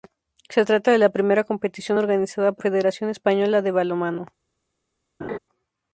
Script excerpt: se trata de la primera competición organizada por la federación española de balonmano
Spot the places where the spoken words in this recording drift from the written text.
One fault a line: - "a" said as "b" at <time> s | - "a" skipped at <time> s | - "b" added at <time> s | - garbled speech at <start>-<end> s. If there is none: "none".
- "la" skipped at 2.6 s